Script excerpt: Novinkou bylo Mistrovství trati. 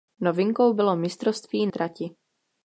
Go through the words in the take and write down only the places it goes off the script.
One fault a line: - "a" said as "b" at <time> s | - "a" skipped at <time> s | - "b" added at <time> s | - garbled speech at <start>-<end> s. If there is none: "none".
none